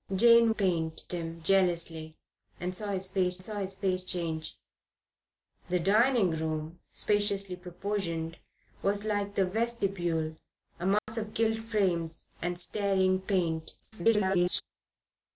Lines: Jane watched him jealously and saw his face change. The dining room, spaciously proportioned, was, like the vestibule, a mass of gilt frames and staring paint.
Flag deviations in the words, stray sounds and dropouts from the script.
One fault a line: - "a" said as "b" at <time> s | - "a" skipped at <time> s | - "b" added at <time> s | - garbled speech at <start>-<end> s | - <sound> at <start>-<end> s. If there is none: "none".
- "watched" said as "paint" at 0.5 s
- "saw his face" added at 3.4 s
- dropout at 11.0-11.1 s
- garbled speech at 13.8-14.6 s